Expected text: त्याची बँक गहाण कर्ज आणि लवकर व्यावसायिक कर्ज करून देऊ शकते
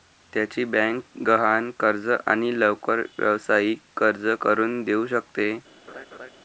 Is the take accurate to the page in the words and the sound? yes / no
no